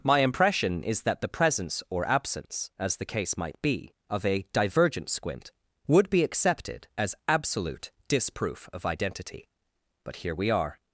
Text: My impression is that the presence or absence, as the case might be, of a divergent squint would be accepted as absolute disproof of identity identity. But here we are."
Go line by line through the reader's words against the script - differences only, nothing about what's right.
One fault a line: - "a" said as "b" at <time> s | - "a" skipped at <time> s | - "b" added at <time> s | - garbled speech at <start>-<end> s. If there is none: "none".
- "identity" skipped at 9.5 s